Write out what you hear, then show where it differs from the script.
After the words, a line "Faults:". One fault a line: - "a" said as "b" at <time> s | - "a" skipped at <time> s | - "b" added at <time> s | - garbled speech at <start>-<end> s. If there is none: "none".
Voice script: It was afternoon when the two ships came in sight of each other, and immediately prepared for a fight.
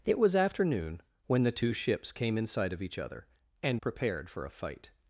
It was afternoon when the two ships came in sight of each other, and prepared for a fight.
Faults:
- "immediately" skipped at 3.8 s